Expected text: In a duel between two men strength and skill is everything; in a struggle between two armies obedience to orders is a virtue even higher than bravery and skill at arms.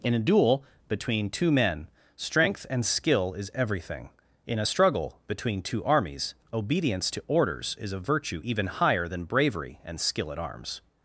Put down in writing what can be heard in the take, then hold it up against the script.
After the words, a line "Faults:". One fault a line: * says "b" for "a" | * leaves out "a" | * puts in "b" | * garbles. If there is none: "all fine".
In a duel between two men strength and skill is everything; in a struggle between two armies obedience to orders is a virtue even higher than bravery and skill at arms.
Faults:
all fine